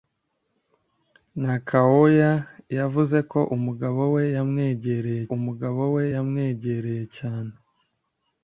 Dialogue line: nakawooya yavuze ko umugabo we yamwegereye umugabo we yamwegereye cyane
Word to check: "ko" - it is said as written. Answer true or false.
true